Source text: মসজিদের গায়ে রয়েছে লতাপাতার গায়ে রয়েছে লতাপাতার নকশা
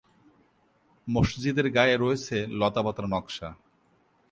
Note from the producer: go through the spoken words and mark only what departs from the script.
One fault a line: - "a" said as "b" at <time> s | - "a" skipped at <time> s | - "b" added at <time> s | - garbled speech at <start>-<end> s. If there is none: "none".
- "গায়ে রয়েছে লতাপাতার" skipped at 3.0 s